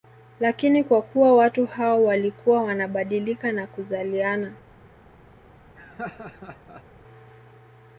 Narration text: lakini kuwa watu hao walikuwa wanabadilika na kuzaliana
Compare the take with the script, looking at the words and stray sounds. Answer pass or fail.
fail